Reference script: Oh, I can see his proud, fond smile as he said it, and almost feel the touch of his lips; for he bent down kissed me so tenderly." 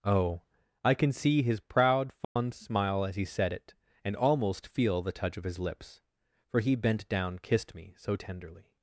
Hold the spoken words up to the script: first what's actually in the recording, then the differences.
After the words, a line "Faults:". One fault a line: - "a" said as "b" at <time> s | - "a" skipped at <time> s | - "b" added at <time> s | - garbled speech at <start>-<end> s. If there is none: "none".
Oh, I can see his proud, fond smile as he said it, and almost feel the touch of his lips; for he bent down kissed me so tenderly."
Faults:
none